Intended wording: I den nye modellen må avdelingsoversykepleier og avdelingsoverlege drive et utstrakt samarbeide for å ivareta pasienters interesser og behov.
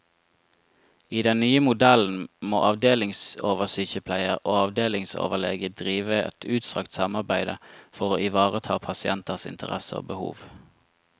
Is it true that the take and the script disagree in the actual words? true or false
false